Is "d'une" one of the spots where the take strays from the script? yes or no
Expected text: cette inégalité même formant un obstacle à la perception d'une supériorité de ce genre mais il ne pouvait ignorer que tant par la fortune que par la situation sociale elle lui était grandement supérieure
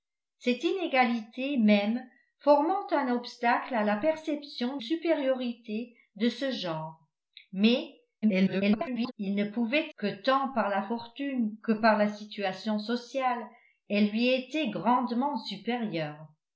yes